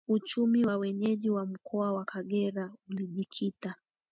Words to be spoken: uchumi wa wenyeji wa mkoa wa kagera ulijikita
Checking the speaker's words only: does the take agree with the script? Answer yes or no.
yes